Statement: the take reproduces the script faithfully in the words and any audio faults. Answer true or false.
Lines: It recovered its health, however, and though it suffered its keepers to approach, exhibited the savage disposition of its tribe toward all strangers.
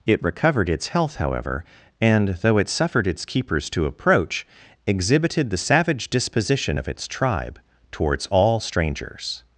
false